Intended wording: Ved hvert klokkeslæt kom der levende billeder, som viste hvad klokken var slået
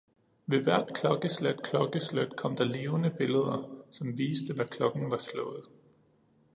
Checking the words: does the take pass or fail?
fail